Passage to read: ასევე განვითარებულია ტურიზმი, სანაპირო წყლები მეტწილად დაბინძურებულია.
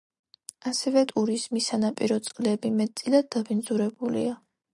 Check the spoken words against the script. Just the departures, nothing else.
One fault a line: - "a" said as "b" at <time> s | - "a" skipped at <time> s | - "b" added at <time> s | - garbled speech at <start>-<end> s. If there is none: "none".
- "განვითარებულია" skipped at 1.0 s